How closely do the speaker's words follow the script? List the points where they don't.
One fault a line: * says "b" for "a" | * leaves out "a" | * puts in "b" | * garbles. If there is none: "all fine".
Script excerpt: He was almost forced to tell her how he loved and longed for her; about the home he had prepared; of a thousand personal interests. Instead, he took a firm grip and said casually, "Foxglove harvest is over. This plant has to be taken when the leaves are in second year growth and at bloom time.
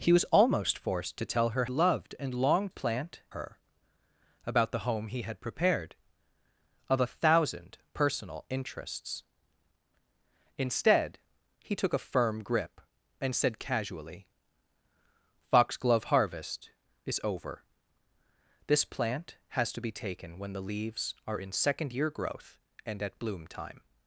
* leaves out "how he"
* says "plant" for "for"